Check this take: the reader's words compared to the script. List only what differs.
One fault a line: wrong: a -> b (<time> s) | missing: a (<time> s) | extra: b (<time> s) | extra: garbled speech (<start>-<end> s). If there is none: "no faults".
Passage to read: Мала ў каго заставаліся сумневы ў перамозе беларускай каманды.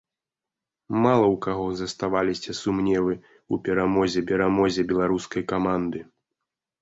extra: перамозе (4.3 s)